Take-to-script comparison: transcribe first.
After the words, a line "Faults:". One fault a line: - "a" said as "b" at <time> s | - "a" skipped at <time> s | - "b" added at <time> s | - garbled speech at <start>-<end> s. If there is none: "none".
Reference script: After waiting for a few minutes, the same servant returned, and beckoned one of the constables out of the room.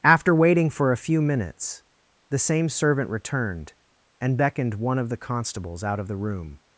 After waiting for a few minutes, the same servant returned, and beckoned one of the constables out of the room.
Faults:
none